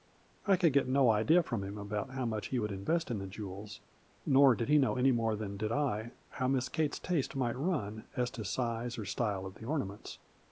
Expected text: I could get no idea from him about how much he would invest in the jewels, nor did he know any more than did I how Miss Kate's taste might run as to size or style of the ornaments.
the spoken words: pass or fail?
pass